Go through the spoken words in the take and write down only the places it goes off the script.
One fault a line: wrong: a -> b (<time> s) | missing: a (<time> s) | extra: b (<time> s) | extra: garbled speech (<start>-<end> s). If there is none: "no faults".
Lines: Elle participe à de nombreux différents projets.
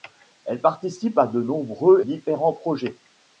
no faults